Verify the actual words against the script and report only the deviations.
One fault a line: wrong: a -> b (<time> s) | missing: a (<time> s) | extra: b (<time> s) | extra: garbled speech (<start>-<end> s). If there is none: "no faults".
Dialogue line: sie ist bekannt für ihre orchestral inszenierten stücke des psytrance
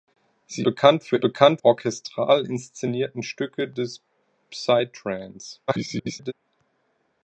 missing: ist (0.7 s)
wrong: ihre -> bekannt (1.2 s)
extra: garbled speech (5.7-6.3 s)